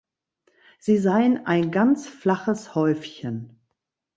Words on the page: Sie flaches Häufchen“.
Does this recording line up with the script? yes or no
no